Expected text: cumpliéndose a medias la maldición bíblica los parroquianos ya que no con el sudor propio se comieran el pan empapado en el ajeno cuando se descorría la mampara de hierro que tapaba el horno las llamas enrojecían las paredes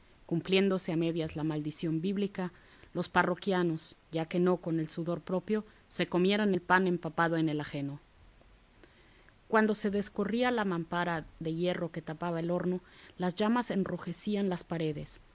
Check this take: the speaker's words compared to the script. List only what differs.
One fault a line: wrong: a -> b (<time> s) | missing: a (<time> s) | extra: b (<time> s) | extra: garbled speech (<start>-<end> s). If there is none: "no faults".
no faults